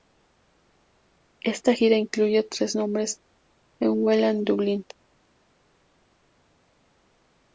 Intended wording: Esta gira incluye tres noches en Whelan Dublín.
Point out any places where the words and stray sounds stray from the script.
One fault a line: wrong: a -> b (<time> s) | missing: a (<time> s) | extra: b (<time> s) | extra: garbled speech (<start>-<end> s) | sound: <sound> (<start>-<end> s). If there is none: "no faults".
no faults